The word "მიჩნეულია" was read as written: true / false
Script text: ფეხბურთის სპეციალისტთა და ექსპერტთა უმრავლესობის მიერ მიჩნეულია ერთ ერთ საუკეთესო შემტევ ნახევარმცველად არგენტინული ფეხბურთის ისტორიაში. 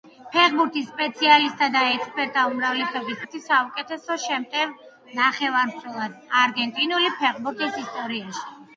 false